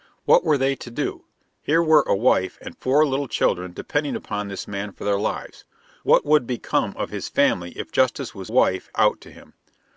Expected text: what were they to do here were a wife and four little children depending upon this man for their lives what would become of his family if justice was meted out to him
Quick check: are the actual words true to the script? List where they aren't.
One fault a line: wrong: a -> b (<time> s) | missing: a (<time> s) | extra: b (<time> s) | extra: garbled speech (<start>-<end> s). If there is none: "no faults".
wrong: meted -> wife (8.5 s)